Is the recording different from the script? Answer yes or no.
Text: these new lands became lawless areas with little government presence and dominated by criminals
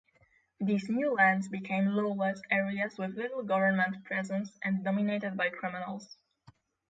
no